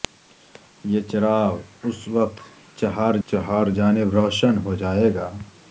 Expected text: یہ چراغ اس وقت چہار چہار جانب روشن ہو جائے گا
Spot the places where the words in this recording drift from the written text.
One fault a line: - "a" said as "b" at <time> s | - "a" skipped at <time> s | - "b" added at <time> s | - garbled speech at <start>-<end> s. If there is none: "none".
none